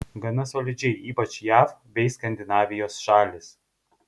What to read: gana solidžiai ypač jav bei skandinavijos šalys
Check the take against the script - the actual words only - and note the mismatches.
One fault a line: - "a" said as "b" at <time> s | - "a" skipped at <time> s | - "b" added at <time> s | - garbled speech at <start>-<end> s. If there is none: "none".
none